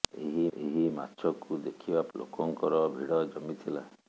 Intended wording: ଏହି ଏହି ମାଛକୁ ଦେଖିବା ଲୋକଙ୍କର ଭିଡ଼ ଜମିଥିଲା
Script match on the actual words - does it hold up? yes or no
yes